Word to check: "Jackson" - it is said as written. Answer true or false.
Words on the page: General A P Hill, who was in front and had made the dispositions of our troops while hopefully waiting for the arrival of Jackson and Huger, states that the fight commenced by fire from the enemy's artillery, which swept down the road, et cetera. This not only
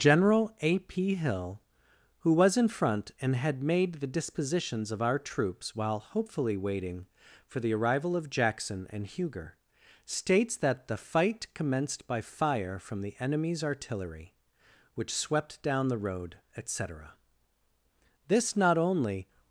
true